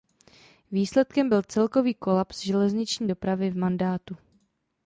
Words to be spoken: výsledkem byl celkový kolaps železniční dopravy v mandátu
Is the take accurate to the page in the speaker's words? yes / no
yes